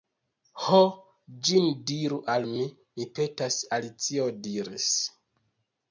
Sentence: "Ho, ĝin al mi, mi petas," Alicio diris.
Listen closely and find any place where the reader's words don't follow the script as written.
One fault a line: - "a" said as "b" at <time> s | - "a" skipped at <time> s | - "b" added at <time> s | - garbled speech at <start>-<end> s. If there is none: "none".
- "diru" added at 1.9 s